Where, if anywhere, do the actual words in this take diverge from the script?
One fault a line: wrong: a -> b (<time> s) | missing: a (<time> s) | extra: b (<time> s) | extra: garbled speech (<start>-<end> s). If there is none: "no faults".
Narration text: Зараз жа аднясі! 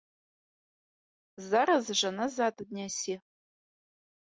extra: назад (2.2 s)